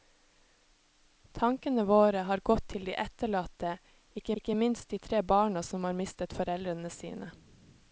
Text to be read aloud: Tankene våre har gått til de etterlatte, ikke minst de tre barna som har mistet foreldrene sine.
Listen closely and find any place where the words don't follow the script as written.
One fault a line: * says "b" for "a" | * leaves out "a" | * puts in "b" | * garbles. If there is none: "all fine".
* puts in "ikke"